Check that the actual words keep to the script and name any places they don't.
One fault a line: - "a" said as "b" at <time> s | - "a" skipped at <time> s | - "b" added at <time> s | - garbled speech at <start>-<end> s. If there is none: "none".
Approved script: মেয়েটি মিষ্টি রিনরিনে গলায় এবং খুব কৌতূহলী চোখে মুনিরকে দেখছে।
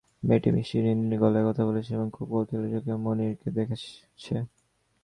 - "কথা বলছে" added at 1.5 s